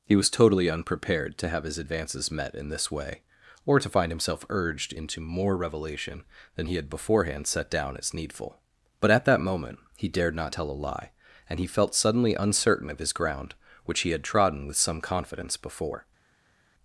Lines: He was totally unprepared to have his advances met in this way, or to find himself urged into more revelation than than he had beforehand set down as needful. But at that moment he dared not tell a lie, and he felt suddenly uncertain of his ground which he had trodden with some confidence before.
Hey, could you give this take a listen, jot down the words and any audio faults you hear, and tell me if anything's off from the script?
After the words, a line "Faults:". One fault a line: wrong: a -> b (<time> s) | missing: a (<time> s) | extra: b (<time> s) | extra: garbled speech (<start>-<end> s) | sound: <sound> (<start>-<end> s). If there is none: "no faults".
He was totally unprepared to have his advances met in this way, or to find himself urged into more revelation than he had beforehand set down as needful. But at that moment he dared not tell a lie, and he felt suddenly uncertain of his ground which he had trodden with some confidence before.
Faults:
missing: than (6.7 s)